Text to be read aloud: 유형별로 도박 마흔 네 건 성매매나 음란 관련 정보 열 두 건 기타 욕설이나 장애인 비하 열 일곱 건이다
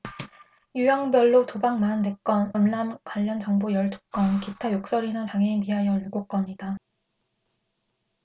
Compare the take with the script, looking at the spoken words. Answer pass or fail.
fail